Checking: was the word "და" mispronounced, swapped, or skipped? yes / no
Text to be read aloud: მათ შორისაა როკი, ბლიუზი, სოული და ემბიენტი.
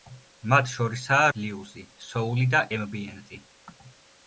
no